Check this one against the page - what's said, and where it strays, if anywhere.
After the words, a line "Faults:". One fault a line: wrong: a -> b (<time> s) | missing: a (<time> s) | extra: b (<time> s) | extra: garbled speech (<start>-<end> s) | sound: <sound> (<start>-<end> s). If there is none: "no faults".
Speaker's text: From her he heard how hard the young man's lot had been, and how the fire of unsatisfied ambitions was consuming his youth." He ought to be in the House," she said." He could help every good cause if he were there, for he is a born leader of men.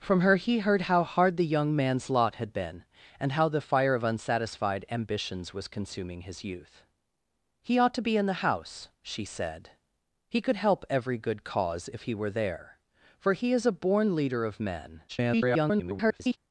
From her he heard how hard the young man's lot had been, and how the fire of unsatisfied ambitions was consuming his youth." He ought to be in the House," she said." He could help every good cause if he were there, for he is a born leader of men. [garbled]
Faults:
extra: garbled speech (15.1-16.4 s)